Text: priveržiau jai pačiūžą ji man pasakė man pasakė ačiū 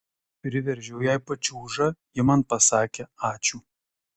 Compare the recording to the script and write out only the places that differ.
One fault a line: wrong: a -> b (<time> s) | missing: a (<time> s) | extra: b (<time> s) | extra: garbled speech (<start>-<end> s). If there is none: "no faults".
missing: man pasakė (3.1 s)